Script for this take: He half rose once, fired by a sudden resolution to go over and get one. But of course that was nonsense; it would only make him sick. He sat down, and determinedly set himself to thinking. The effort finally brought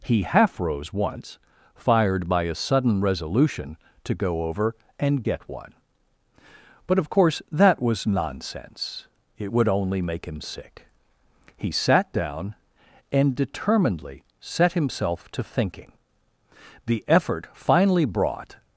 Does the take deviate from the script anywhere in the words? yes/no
no